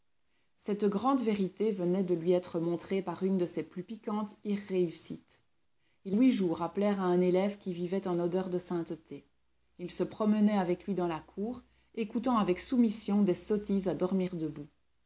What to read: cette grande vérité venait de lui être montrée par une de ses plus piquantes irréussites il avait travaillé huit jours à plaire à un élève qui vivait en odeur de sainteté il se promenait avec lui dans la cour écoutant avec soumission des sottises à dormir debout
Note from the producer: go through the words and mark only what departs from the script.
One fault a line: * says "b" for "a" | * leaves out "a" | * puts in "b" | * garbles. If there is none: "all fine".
* leaves out "avait travaillé"